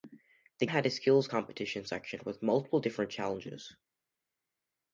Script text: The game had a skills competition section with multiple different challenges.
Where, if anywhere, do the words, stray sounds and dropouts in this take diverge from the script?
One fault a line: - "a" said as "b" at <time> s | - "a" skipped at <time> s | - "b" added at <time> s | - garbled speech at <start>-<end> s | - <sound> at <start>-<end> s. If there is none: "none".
- "game" skipped at 0.7 s